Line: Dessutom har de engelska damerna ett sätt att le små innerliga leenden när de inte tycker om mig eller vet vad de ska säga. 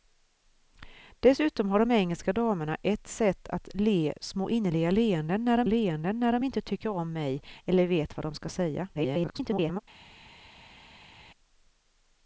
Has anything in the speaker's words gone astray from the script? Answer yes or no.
yes